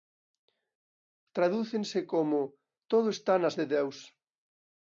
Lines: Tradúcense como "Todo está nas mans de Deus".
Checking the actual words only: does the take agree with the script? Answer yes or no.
no